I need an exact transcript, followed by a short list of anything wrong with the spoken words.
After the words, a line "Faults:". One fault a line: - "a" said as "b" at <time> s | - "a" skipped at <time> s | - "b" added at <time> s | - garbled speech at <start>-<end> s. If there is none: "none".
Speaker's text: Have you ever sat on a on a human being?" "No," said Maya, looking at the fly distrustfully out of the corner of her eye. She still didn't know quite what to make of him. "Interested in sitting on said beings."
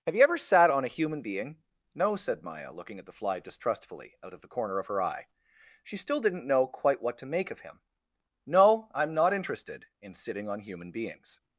Have you ever sat on a human being?" "No," said Maya, looking at the fly distrustfully out of the corner of her eye. She still didn't know quite what to make of him. "No, I'm not interested in sitting on human beings."
Faults:
- "on a" skipped at 0.9 s
- "No I'm not" added at 8.5 s
- "said" said as "human" at 10.6 s